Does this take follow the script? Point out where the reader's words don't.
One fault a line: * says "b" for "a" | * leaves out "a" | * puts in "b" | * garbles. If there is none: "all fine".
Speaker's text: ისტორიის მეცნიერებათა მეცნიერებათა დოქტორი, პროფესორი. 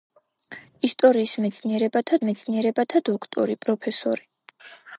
all fine